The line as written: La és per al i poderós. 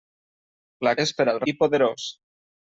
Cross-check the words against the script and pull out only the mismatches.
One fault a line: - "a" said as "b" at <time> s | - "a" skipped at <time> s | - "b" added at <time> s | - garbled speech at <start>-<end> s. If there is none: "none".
none